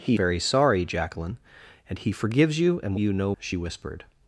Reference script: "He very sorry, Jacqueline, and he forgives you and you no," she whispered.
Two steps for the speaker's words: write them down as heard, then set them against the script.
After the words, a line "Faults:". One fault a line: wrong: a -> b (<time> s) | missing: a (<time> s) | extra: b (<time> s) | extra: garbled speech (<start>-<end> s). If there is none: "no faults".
"He very sorry, Jacqueline, and he forgives you and you no," she whispered.
Faults:
no faults